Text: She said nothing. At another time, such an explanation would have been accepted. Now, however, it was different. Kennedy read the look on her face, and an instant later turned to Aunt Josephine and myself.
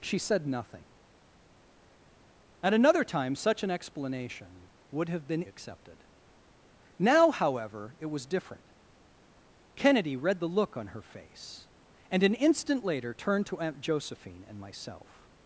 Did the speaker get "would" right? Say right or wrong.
right